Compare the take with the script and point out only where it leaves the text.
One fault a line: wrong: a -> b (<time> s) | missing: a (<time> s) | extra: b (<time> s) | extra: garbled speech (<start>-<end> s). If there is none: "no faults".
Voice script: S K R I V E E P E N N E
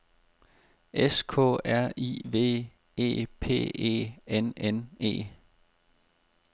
missing: E (3.3 s)